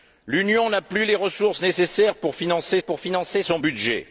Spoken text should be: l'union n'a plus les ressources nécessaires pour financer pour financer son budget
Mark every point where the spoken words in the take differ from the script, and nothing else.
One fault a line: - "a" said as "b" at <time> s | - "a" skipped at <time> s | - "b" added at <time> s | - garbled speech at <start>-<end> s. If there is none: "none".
none